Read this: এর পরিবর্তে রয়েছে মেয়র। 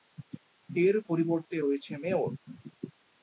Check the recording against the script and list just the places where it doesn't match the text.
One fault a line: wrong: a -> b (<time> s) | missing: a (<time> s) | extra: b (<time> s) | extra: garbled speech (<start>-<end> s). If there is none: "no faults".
no faults